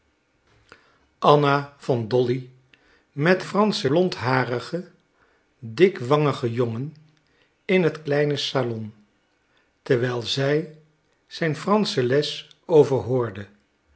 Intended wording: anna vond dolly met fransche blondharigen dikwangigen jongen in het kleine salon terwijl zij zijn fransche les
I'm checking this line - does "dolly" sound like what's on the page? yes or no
yes